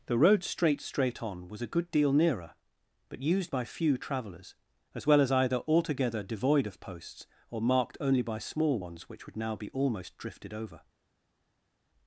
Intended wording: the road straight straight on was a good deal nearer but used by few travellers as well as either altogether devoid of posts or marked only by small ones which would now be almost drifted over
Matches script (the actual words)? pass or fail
pass